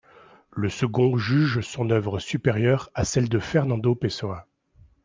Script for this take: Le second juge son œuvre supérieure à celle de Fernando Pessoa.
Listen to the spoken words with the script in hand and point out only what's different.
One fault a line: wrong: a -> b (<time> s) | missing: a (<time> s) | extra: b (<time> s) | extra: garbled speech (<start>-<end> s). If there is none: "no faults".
no faults